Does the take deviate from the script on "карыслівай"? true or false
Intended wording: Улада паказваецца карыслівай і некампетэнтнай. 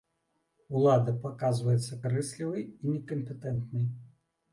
false